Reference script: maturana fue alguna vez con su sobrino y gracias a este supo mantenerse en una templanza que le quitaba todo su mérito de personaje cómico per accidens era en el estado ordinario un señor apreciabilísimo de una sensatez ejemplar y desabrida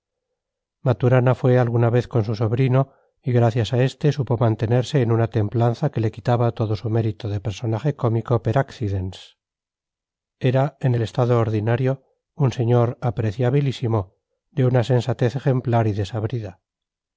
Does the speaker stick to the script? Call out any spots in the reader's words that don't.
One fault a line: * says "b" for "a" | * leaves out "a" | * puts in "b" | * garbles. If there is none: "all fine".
all fine